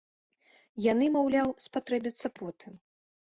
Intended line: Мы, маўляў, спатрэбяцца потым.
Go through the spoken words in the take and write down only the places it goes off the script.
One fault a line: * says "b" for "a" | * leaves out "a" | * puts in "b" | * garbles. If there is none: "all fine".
* says "Яны" for "Мы"